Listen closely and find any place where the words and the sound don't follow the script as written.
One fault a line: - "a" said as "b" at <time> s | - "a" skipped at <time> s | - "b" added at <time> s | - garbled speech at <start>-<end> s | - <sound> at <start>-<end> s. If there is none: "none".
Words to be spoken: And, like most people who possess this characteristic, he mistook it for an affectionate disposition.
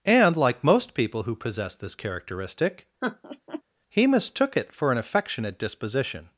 - laugh at 3.0-3.6 s